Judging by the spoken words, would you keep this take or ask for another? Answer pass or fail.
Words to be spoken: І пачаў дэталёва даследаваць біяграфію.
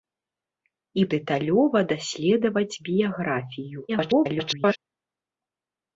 fail